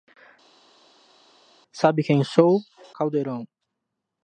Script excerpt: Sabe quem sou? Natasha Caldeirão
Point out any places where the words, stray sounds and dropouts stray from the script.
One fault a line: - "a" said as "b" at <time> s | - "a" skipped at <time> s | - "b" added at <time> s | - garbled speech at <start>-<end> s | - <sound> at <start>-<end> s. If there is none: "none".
- "Natasha" skipped at 2.6 s